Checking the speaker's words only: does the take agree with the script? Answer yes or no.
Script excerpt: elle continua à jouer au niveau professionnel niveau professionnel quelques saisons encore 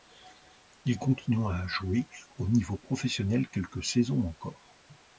no